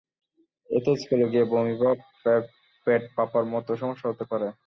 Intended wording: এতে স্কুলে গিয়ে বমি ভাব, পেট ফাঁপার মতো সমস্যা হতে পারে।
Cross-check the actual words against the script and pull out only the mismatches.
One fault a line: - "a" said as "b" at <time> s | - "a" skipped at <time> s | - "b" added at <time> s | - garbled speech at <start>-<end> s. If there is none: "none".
none